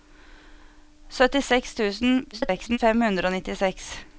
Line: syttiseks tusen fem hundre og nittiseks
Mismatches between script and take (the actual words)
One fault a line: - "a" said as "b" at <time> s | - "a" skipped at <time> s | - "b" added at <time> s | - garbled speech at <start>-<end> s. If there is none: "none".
- garbled speech at 2.3-2.8 s